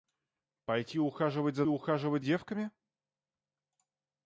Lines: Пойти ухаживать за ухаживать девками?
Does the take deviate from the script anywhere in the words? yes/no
no